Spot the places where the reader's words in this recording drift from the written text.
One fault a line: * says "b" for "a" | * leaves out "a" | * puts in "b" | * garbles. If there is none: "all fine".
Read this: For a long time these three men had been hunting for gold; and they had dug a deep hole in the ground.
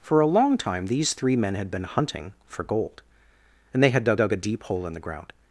* puts in "dug"